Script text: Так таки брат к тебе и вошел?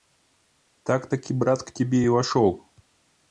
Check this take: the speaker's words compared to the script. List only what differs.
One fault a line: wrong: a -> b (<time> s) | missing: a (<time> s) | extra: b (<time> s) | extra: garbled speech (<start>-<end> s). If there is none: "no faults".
no faults